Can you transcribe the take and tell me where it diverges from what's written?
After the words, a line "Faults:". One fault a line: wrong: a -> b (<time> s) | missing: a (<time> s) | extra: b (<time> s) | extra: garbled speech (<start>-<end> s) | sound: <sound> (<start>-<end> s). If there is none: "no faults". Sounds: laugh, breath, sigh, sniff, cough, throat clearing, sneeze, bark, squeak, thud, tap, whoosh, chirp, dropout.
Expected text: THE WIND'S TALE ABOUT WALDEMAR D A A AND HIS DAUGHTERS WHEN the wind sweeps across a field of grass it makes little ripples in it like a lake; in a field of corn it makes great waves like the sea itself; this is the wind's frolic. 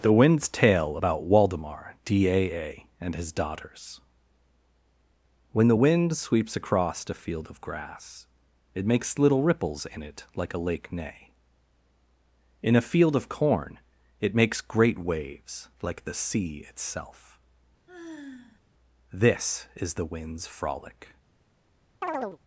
THE WIND'S TALE ABOUT WALDEMAR D A A AND HIS DAUGHTERS WHEN the wind sweeps across a field of grass it makes little ripples in it like a lake; neigh in a field of corn it makes great waves like the sea itself; this is the wind's frolic.
Faults:
extra: neigh (10.9 s)
sound: sigh (17.9-18.6 s)
sound: chirp (22.0-22.4 s)